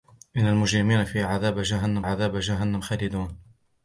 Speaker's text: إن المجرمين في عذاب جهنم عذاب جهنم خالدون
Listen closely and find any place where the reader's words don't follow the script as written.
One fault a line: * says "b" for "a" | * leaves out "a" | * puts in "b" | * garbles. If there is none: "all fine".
all fine